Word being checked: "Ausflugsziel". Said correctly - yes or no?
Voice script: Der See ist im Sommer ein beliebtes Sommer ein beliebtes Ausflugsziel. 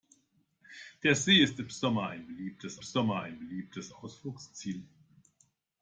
yes